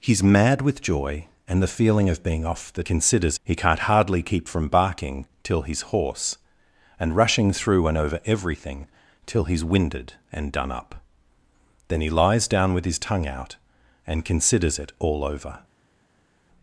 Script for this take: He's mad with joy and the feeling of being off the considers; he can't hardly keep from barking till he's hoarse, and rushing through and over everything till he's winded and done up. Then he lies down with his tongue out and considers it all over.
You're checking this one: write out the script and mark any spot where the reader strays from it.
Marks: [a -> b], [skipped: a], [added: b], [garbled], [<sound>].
He's mad with joy and the feeling of being off the considers; he can't hardly keep from barking till he's hoarse, and rushing through and over everything till he's winded and done up. Then he lies down with his tongue out and considers it all over.